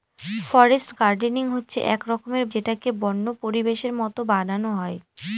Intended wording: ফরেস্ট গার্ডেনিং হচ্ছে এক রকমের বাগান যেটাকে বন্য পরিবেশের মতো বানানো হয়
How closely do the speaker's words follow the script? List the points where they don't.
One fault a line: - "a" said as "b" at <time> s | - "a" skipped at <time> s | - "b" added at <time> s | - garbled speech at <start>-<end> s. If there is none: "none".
- "বাগান" skipped at 2.4 s